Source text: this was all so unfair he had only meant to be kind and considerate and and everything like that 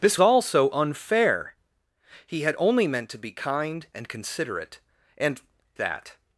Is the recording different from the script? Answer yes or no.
yes